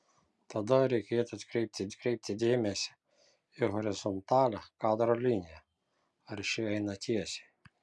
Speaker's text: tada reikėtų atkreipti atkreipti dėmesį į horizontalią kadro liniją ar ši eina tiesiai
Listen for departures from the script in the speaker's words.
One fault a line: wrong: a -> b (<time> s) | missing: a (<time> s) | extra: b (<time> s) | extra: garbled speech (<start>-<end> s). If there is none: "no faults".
no faults